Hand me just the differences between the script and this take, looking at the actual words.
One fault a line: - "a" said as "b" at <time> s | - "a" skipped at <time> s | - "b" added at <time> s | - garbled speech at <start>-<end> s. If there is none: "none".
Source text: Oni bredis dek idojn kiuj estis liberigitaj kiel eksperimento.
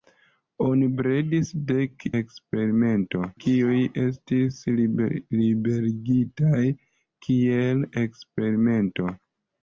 - "idojn" said as "eksperimento" at 2.2 s